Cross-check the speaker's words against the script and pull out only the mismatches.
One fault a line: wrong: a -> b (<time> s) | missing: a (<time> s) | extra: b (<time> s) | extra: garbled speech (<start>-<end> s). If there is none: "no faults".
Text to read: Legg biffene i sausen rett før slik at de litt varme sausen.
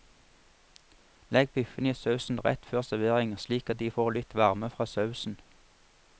extra: servering (2.8 s)
extra: får (3.9 s)
extra: fra (4.7 s)